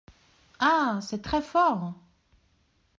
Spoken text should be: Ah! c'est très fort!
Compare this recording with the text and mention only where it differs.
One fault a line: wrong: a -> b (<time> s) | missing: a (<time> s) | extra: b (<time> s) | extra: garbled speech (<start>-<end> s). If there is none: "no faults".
no faults